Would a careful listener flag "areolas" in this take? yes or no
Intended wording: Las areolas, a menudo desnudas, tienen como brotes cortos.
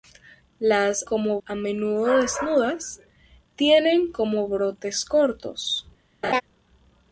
yes